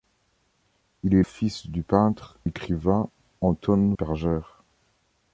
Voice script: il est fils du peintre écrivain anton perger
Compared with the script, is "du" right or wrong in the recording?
right